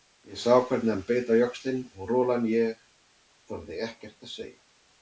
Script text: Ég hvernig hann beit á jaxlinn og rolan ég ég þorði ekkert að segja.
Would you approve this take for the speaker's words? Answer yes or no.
no